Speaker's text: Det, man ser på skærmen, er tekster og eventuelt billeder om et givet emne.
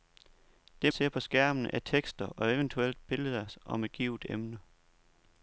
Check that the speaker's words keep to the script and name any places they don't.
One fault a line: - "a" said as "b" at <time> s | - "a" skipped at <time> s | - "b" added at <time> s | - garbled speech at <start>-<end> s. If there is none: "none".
- "man" skipped at 0.9 s